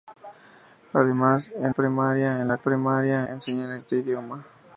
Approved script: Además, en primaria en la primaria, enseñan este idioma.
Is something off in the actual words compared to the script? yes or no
no